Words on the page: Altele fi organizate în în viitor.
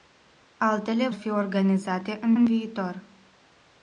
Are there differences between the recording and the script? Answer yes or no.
no